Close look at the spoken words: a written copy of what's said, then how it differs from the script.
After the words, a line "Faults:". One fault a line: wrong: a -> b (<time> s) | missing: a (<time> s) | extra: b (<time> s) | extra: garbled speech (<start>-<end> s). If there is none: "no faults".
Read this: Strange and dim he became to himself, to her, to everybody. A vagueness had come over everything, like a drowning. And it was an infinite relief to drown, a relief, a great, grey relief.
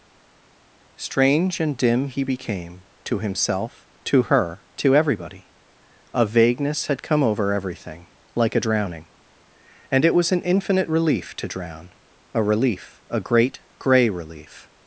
Strange and dim he became to himself, to her, to everybody. A vagueness had come over everything, like a drowning. And it was an infinite relief to drown, a relief, a great, grey relief.
Faults:
no faults